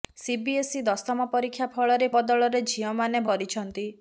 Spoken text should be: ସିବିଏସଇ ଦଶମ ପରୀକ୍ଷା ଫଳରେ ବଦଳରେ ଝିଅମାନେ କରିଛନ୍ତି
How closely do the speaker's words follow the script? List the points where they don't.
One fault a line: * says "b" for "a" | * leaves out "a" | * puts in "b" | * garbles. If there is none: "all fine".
all fine